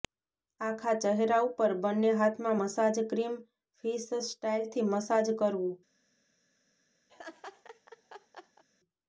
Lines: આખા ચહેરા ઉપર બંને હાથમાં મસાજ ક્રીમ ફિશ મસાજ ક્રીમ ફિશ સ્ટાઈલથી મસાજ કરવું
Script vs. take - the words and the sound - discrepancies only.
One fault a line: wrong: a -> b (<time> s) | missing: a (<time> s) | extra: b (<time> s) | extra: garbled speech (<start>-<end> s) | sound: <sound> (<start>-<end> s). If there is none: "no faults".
missing: મસાજ ક્રીમ ફિશ (4.1 s)
sound: laugh (7.1-8.6 s)